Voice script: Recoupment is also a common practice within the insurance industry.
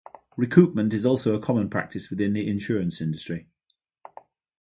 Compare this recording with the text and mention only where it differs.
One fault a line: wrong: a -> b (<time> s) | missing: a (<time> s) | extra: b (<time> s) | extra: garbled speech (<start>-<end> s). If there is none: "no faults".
no faults